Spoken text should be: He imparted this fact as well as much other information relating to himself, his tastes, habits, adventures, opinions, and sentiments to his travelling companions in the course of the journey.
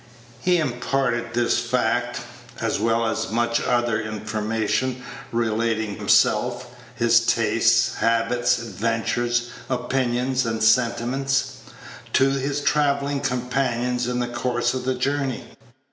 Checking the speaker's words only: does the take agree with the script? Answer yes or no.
no